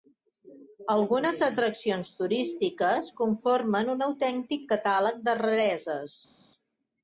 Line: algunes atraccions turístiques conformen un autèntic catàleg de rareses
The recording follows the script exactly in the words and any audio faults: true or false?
true